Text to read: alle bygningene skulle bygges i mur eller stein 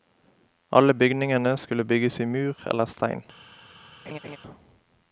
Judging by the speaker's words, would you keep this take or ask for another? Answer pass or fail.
pass